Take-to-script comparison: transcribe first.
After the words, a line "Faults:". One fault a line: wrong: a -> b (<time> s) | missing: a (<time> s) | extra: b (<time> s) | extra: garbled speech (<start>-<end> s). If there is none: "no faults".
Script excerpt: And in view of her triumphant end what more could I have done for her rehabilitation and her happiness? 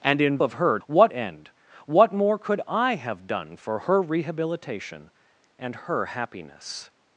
And in of her what end what more could I have done for her rehabilitation and her happiness?
Faults:
missing: view (0.4 s)
wrong: triumphant -> what (0.8 s)